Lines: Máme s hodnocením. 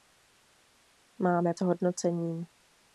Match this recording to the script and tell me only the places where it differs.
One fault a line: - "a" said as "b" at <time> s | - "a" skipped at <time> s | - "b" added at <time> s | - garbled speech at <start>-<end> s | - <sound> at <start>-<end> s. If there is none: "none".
none